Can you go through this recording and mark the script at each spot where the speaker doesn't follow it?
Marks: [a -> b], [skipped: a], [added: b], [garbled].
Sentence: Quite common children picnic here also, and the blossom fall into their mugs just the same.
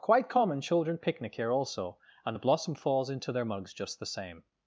Quite common children picnic here also, and the blossom [fall -> falls] into their mugs just the same.